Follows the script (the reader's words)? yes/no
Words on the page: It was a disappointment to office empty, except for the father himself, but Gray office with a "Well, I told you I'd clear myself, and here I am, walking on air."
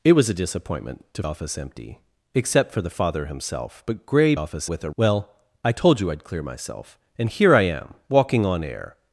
yes